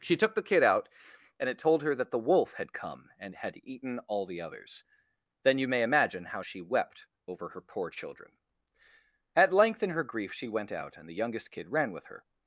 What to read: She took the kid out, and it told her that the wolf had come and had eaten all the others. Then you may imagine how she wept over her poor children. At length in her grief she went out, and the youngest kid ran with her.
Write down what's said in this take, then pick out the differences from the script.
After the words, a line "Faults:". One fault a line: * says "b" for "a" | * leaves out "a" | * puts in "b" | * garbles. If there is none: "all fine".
She took the kid out, and it told her that the wolf had come and had eaten all the others. Then you may imagine how she wept over her poor children. At length in her grief she went out, and the youngest kid ran with her.
Faults:
all fine